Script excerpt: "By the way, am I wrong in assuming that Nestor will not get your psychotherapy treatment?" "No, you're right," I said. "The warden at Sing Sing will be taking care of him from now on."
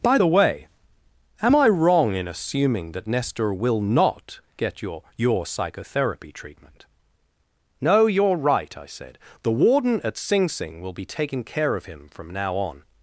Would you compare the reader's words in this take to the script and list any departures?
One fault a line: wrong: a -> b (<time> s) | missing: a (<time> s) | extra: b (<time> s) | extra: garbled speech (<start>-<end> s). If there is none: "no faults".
extra: your (5.2 s)